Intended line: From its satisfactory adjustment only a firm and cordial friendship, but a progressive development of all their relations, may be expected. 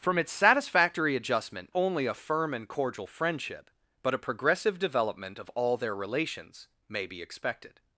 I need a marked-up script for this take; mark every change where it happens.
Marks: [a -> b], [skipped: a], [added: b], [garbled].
From its satisfactory adjustment only a firm and cordial friendship, but a progressive development of all their relations, may be expected.